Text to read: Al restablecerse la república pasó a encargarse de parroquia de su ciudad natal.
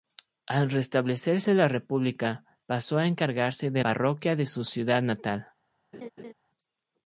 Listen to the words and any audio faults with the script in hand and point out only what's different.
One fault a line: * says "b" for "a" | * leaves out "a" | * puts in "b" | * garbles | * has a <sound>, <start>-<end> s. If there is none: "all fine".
* has a laugh, 5.9-6.3 s